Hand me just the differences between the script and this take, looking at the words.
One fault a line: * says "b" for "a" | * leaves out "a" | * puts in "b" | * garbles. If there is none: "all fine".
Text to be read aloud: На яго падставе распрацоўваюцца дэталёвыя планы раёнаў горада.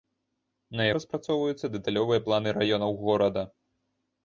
* leaves out "яго падставе"